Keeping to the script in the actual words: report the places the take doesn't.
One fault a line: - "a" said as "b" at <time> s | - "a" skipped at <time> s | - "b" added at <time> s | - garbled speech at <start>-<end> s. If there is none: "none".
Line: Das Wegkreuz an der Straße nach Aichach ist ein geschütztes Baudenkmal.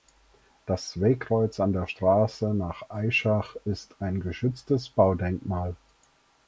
none